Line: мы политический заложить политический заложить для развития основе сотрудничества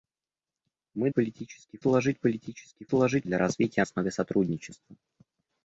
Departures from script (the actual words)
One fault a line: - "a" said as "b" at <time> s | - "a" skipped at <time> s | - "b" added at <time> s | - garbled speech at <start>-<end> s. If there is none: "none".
none